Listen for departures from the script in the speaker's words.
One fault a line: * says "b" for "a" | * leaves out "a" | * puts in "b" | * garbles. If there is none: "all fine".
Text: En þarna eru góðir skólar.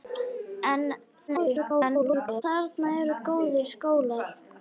* garbles